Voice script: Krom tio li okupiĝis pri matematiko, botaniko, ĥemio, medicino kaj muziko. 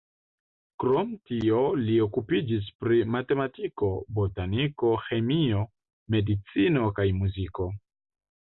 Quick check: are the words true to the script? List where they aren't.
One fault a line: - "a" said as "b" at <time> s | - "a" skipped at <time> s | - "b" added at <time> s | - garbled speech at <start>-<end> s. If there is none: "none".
none